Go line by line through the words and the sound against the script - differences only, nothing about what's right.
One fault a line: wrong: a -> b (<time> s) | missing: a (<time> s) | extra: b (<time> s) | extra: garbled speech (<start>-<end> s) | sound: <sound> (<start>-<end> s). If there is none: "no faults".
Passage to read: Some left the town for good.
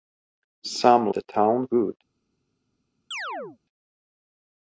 missing: left (1.1 s)
missing: for (1.7 s)
sound: chirp (3.1-3.6 s)